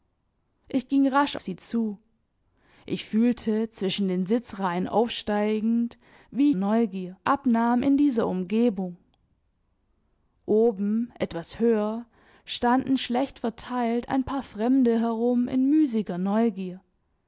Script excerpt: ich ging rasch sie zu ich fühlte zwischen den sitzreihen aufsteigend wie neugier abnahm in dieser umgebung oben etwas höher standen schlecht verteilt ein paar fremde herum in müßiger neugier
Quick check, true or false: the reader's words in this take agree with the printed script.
true